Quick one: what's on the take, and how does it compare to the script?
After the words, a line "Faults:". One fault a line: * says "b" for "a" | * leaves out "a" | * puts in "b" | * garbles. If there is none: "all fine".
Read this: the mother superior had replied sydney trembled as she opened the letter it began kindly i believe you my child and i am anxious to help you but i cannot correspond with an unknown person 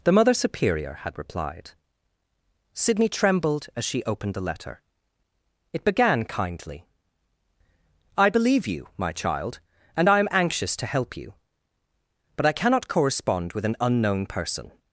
the mother superior had replied sydney trembled as she opened the letter it began kindly i believe you my child and i am anxious to help you but i cannot correspond with an unknown person
Faults:
all fine